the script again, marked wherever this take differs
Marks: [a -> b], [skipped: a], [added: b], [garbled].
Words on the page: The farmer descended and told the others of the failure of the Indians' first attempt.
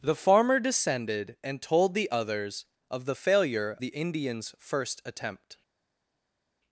The farmer descended and told the others of the failure [skipped: of] the Indians' first attempt.